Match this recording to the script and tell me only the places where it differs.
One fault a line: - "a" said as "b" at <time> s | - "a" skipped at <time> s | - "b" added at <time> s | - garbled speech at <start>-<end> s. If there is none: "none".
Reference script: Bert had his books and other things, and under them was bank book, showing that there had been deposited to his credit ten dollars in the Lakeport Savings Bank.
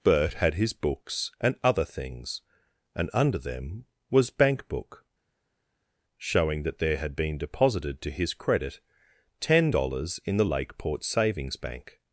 none